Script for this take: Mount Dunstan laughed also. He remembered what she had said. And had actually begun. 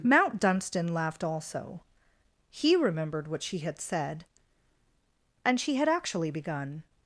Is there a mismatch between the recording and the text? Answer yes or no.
yes